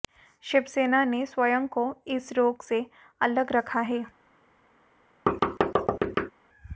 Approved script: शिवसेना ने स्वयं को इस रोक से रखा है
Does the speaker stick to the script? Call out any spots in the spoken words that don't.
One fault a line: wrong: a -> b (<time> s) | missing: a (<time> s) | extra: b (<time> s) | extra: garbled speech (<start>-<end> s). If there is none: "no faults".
extra: अलग (3.2 s)